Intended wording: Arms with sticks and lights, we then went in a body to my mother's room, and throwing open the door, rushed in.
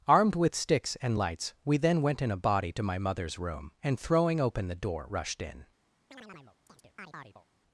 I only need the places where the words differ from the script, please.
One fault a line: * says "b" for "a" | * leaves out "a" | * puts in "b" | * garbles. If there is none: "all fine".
* says "Armed" for "Arms"